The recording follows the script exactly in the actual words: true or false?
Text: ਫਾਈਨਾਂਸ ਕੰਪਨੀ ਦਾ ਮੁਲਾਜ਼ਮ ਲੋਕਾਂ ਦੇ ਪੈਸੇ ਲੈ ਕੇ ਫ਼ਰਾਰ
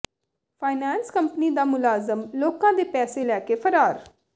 true